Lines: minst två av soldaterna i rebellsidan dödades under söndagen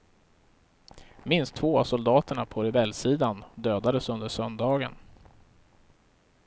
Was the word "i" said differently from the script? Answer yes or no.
yes